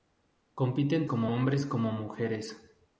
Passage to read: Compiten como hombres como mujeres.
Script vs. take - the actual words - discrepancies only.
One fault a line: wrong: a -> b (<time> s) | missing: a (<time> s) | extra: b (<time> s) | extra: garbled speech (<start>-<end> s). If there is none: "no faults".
no faults